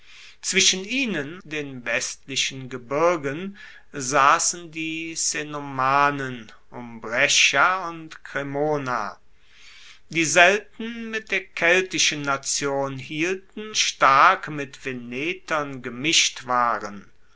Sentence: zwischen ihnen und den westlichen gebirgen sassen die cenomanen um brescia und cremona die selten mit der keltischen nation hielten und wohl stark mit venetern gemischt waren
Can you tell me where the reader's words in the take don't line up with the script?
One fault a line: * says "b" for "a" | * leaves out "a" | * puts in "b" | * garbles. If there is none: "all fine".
* leaves out "und"
* leaves out "und wohl"